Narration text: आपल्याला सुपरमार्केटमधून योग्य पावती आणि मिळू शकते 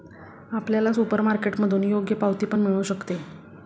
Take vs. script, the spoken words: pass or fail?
fail